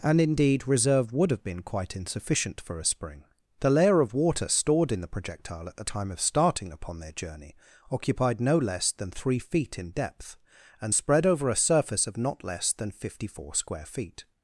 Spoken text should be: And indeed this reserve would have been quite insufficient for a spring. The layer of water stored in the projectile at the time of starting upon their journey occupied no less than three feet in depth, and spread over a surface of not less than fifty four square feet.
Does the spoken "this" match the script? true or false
false